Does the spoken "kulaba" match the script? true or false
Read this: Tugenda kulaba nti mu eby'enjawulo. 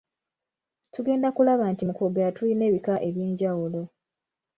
true